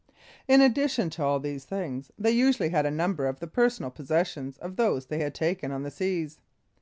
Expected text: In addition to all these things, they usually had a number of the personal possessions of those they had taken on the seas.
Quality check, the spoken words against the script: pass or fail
pass